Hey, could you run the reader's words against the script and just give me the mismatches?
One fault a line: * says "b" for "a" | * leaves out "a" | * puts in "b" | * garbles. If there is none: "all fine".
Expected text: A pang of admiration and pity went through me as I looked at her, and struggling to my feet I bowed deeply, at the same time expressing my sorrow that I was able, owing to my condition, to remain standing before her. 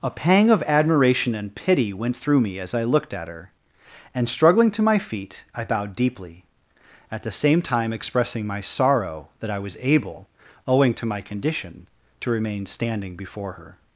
all fine